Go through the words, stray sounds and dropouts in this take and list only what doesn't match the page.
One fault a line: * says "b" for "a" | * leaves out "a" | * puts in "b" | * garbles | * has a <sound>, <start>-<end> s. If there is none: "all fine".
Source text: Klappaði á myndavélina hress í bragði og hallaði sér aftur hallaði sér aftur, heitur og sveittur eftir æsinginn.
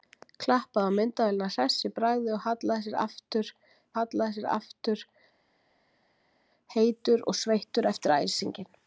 all fine